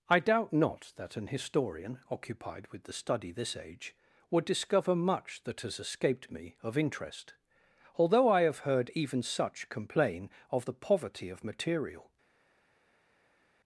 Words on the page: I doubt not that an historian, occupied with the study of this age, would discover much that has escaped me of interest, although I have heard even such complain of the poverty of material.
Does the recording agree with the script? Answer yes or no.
no